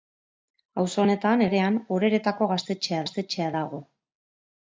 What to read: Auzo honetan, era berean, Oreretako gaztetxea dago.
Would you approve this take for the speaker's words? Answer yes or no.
no